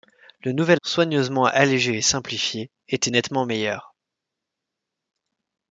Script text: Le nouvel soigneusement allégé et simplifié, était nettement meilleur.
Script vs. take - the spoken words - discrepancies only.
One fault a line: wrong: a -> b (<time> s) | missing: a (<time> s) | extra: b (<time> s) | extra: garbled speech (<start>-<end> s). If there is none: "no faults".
no faults